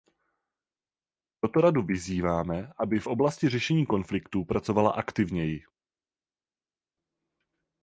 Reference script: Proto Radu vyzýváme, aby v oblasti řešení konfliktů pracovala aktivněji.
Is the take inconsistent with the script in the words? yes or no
no